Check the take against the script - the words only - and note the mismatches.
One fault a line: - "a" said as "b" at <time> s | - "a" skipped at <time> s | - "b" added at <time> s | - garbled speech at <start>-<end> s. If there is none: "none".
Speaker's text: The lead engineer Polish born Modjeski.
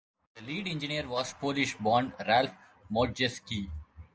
- "was" added at 1.1 s
- "Ralph" added at 2.2 s